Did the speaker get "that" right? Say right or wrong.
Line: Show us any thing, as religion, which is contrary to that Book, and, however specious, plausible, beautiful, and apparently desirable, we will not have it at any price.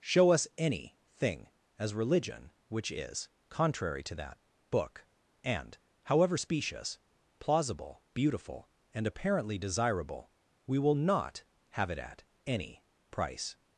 right